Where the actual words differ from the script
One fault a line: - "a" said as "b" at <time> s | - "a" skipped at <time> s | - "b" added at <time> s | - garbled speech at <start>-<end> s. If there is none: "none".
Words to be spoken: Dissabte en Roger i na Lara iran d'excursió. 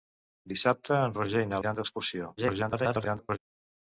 - "Lara" skipped at 1.6 s
- garbled speech at 2.4-3.4 s